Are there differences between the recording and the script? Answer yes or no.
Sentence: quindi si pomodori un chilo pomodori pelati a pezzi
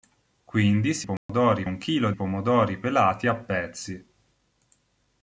no